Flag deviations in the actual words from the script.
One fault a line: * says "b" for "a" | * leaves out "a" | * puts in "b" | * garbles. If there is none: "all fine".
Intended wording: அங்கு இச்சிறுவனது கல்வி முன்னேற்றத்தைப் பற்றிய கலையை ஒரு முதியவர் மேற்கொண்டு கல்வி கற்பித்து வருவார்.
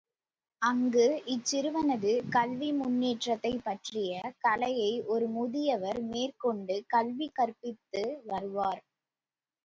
all fine